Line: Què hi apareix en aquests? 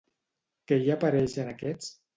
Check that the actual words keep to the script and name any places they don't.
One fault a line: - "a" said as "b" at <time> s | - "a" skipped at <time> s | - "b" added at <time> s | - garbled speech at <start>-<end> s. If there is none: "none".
none